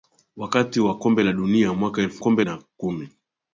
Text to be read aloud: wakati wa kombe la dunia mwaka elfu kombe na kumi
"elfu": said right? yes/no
yes